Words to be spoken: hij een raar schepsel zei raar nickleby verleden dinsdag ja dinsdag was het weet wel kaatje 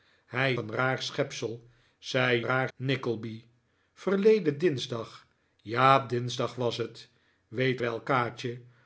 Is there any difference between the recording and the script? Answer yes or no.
no